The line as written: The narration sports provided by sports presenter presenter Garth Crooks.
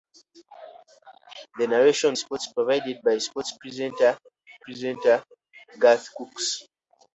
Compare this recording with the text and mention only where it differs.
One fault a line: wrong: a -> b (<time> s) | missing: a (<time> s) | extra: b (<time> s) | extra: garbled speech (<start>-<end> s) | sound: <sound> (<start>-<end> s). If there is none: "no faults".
no faults